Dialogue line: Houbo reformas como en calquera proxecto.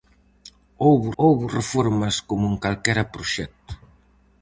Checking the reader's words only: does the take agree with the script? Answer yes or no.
no